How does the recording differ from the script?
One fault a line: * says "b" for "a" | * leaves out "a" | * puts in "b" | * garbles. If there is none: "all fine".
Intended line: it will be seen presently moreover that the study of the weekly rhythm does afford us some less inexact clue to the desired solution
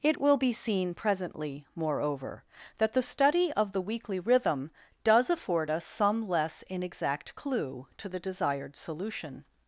all fine